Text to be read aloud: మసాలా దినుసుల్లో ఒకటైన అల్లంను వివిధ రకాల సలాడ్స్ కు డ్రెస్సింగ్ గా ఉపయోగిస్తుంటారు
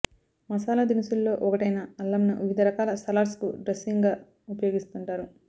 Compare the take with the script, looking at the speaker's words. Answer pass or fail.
pass